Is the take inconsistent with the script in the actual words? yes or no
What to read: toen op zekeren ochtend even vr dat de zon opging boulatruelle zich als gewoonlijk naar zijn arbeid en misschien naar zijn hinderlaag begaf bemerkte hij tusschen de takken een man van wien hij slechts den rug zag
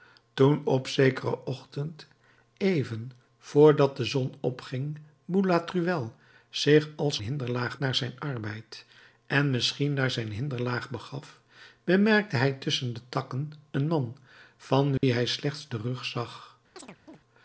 yes